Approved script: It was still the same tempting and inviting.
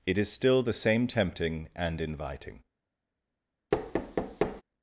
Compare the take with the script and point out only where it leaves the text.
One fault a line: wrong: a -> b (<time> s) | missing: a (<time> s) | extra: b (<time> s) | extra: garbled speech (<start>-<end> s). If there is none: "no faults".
wrong: was -> is (0.2 s)